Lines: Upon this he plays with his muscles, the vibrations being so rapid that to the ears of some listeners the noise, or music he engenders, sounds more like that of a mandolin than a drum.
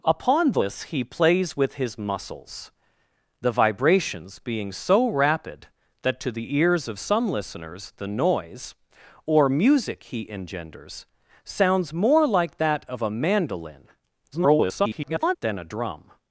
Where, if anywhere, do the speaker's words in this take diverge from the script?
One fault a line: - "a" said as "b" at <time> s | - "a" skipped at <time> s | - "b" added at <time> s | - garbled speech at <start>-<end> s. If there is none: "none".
- garbled speech at 14.3-15.4 s